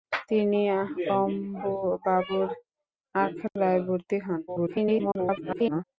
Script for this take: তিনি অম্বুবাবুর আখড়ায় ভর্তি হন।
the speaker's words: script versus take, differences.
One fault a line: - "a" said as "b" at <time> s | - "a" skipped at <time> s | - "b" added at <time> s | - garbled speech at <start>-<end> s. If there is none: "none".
- garbled speech at 4.5-5.8 s